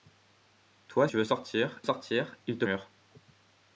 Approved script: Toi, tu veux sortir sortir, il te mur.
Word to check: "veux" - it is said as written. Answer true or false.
true